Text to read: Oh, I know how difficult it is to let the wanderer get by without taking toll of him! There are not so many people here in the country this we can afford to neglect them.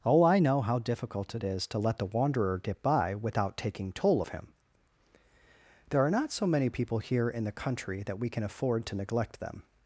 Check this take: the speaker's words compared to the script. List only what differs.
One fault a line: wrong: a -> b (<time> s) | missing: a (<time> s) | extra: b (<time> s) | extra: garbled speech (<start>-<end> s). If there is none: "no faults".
wrong: this -> that (8.0 s)